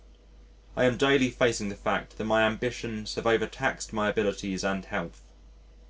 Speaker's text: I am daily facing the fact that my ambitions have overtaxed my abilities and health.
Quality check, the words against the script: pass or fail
pass